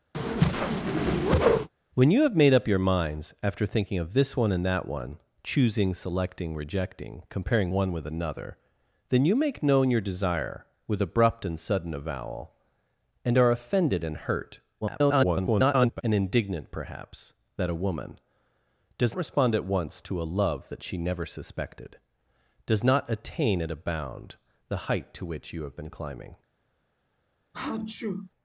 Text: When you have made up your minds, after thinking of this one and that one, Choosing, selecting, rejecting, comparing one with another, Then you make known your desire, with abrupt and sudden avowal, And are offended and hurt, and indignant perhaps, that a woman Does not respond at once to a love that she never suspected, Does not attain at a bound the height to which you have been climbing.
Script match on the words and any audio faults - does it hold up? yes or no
no